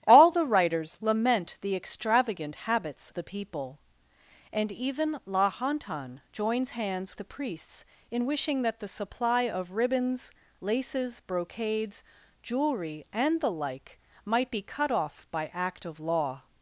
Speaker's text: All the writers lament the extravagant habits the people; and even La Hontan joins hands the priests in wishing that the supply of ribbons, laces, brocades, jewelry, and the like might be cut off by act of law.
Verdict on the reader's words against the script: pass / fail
pass